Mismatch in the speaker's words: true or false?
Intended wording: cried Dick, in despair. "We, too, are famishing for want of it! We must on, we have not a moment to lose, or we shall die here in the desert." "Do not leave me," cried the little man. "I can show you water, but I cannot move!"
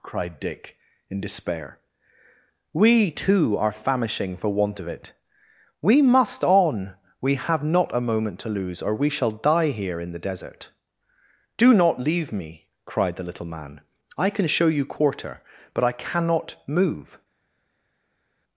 true